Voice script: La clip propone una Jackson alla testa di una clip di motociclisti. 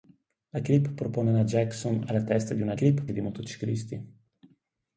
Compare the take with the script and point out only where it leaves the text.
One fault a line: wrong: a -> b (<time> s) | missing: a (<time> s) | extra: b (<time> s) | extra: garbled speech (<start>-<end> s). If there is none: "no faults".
no faults